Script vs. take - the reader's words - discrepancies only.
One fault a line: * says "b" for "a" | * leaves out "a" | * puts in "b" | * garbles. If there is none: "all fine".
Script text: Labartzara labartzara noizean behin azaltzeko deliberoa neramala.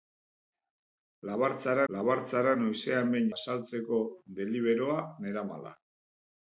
all fine